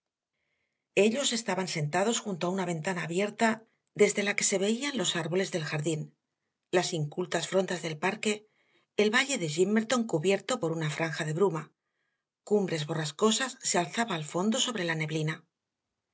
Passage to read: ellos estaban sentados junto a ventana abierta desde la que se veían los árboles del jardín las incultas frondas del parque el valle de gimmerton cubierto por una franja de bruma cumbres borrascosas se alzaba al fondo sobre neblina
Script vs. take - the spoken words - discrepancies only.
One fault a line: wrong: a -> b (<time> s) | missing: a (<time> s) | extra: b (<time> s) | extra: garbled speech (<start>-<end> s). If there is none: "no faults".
extra: una (2.5 s)
extra: la (14.8 s)